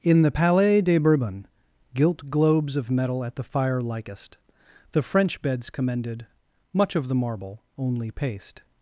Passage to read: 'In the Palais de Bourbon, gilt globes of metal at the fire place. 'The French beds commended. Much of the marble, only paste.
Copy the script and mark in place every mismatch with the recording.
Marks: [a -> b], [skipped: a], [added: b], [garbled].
'In the Palais de Bourbon, gilt globes of metal at the fire [place. -> likest] 'The French beds commended. Much of the marble, only paste.